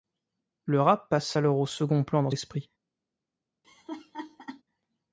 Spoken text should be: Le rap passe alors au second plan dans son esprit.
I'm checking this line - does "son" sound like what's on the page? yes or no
no